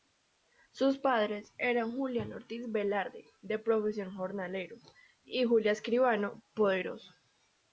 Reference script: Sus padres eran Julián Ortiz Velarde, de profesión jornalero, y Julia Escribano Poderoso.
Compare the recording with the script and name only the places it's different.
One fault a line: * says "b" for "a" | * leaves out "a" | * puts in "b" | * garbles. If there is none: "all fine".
all fine